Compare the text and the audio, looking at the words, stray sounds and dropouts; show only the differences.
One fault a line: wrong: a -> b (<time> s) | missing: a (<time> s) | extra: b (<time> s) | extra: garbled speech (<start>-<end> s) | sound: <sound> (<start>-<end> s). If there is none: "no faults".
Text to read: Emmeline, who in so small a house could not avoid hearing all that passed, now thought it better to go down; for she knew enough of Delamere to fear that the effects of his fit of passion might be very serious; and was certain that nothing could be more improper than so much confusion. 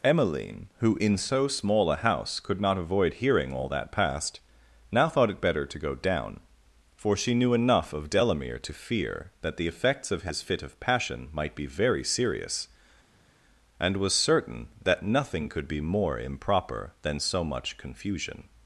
no faults